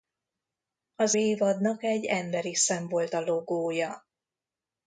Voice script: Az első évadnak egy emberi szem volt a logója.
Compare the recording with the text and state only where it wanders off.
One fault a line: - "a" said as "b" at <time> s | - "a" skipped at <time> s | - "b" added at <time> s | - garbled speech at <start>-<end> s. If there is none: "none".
- "első" skipped at 1.1 s